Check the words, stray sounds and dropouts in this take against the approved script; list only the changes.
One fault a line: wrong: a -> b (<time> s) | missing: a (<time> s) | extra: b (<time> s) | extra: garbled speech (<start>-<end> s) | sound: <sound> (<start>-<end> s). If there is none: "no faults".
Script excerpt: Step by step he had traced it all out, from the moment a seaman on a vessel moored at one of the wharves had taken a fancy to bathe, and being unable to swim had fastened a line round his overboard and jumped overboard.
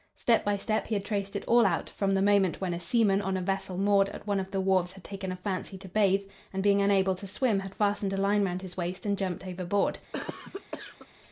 extra: when (2.6 s)
wrong: overboard -> waist (8.8 s)
sound: cough (10.1-11.1 s)